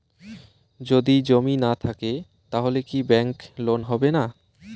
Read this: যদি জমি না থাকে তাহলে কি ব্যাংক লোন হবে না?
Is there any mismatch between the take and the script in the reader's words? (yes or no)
no